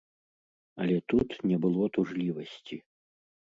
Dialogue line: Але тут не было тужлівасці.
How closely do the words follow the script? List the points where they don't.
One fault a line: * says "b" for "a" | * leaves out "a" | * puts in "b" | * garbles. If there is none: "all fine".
all fine